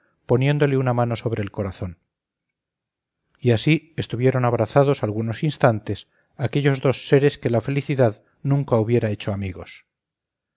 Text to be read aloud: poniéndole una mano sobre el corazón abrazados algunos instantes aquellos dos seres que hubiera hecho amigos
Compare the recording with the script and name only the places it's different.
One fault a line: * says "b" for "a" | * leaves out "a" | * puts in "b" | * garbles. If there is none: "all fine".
* puts in "y así estuvieron"
* puts in "la felicidad nunca"